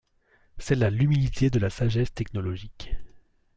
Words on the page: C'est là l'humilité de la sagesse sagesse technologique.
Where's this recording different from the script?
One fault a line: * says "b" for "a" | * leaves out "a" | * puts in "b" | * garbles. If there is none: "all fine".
* leaves out "sagesse"